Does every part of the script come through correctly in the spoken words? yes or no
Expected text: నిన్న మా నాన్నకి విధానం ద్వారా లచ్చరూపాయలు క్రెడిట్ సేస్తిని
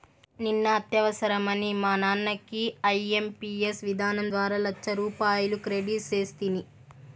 no